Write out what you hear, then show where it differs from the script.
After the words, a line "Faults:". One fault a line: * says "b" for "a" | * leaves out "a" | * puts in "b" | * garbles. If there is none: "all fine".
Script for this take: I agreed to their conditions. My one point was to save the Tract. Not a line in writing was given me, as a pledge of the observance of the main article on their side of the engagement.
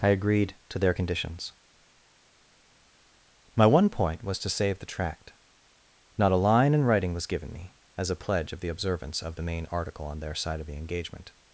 I agreed to their conditions. My one point was to save the Tract. Not a line in writing was given me, as a pledge of the observance of the main article on their side of the engagement.
Faults:
all fine